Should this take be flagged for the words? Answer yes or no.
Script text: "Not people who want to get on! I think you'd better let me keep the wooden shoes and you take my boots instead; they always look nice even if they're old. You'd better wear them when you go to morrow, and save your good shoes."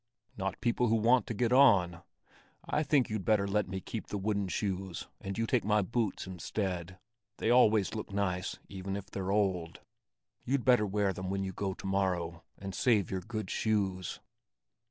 no